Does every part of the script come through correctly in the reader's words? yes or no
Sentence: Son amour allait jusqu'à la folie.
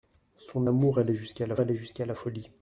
no